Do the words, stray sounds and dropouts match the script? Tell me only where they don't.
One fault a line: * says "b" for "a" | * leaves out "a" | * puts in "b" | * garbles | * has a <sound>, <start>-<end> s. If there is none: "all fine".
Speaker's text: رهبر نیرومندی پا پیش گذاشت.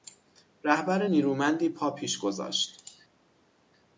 all fine